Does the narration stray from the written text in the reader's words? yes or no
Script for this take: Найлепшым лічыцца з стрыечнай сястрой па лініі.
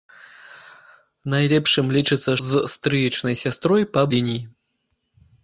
no